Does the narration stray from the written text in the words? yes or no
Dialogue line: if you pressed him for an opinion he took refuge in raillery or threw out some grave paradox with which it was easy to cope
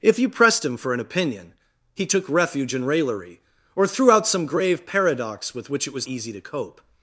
no